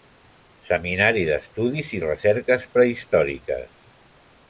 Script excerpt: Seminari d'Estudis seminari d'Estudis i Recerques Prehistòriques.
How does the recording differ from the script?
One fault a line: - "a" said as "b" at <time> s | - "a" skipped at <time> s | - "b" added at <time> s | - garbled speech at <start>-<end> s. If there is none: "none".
- "seminari d'Estudis" skipped at 1.9 s